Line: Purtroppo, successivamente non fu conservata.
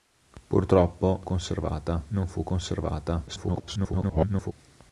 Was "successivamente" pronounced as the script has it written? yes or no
no